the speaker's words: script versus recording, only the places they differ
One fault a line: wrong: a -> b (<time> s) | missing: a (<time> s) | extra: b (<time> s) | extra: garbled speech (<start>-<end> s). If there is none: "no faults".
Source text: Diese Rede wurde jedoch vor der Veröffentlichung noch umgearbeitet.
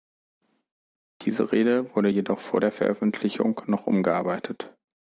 no faults